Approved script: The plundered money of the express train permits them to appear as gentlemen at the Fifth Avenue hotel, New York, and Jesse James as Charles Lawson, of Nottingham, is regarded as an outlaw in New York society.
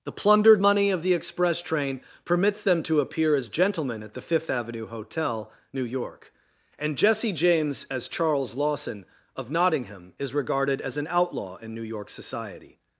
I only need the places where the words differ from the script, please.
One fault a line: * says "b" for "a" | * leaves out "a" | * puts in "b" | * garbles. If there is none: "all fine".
all fine